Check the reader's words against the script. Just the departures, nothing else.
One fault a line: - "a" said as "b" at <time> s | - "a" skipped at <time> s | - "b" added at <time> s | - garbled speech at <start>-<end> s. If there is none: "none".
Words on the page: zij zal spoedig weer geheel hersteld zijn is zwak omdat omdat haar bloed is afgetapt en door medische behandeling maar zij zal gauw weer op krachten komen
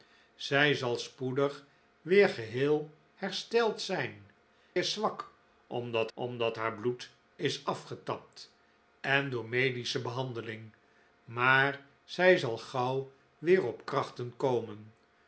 none